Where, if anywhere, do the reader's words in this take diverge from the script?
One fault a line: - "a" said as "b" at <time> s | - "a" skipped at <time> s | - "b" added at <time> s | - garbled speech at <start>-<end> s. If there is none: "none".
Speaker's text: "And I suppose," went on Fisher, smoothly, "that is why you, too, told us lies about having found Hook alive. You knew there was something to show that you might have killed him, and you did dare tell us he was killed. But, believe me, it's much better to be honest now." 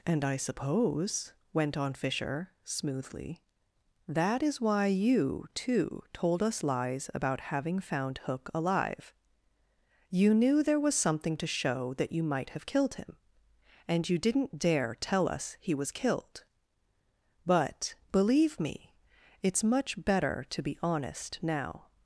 - "did" said as "didn't" at 14.2 s